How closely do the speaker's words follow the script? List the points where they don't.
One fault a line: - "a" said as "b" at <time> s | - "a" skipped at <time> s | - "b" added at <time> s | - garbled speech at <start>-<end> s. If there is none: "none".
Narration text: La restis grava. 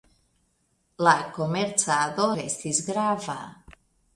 - "komercado" added at 1.4 s